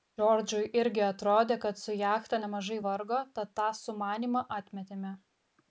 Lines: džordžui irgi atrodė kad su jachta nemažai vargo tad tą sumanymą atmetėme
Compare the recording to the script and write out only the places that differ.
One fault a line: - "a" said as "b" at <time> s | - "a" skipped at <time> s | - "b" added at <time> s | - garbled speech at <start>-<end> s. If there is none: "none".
none